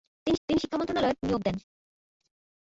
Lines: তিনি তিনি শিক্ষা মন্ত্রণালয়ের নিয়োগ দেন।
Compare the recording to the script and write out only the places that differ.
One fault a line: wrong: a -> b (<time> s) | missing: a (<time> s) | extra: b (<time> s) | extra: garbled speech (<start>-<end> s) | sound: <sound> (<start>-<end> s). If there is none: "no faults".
no faults